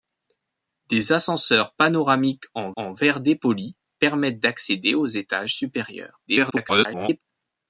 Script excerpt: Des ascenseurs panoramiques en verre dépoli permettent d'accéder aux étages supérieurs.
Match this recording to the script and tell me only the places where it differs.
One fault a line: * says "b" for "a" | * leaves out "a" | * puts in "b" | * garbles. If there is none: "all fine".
* puts in "en"
* garbles